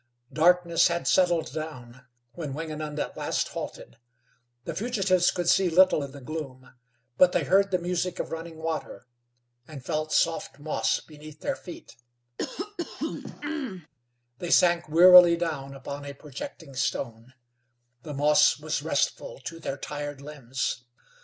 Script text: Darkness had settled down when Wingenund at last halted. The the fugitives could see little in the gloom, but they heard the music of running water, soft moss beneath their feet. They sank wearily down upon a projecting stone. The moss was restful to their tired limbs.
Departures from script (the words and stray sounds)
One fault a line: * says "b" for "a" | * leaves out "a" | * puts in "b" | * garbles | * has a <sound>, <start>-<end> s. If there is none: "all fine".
* leaves out "the"
* puts in "and felt"
* has a throat clearing, 12.4-13.9 s